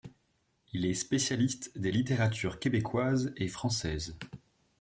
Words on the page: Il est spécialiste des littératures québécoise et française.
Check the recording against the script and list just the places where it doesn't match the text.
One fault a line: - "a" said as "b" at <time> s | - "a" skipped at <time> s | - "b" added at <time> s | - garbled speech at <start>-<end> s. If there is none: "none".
none